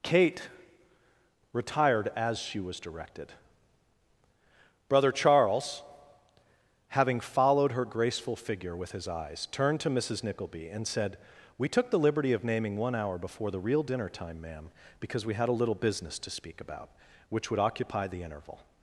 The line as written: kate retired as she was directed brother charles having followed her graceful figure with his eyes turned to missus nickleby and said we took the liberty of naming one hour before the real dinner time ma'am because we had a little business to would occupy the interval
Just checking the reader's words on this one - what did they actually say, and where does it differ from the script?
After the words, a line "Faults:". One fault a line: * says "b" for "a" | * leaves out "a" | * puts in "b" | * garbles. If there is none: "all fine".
kate retired as she was directed brother charles having followed her graceful figure with his eyes turned to missus nickleby and said we took the liberty of naming one hour before the real dinner time ma'am because we had a little business to speak about which would occupy the interval
Faults:
* puts in "speak about which"